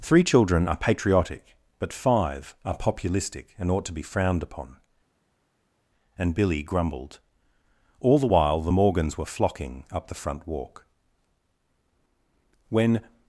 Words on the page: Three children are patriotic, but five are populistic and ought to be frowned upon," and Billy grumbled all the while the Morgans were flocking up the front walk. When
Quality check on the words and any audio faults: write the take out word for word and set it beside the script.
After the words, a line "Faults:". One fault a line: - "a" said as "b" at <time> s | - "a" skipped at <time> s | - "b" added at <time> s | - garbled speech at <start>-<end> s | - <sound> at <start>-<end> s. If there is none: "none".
Three children are patriotic, but five are populistic and ought to be frowned upon," and Billy grumbled all the while the Morgans were flocking up the front walk. When
Faults:
none